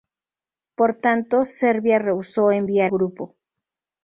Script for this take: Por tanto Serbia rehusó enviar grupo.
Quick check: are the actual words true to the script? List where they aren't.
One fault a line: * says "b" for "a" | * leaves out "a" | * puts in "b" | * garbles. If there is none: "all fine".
all fine